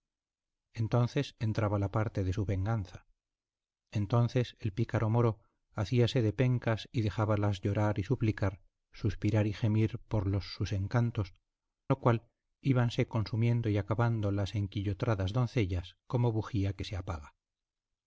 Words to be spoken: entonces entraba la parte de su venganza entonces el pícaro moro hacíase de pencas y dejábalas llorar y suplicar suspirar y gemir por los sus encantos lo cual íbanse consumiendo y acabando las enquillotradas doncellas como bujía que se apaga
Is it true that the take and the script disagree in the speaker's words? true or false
false